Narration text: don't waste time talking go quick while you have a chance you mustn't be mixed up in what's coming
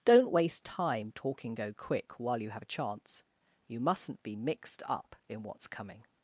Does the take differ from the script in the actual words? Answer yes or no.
no